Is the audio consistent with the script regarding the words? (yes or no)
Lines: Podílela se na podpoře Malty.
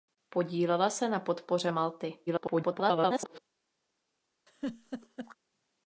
no